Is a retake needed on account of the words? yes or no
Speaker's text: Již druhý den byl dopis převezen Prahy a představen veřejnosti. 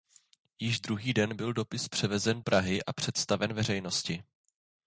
no